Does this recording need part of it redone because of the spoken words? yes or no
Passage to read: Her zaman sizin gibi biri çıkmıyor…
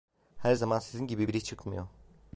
no